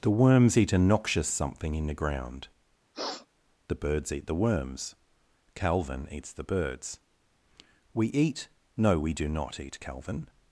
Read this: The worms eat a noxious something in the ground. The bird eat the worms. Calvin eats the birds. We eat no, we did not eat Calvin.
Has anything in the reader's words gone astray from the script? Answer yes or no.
yes